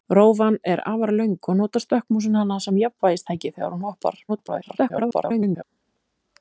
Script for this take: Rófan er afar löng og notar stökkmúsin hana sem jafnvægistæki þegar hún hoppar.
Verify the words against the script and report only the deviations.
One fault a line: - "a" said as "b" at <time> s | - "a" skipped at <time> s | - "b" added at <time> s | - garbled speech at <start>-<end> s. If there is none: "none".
- garbled speech at 4.3-5.6 s